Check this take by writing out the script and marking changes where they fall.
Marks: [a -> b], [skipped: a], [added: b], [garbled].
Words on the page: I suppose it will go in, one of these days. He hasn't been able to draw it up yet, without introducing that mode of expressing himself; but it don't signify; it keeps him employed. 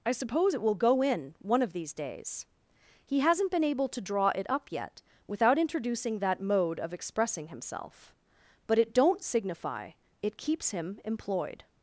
I suppose it will go in, one of these days. He hasn't been able to draw it up yet, without introducing that mode of expressing himself; but it don't signify; it keeps him employed.